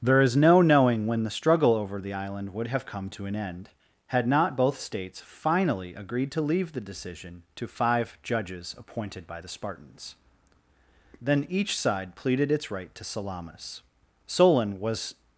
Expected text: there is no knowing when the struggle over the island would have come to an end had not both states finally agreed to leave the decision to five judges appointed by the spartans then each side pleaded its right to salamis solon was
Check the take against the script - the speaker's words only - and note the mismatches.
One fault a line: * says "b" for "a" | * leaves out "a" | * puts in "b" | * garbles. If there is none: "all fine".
all fine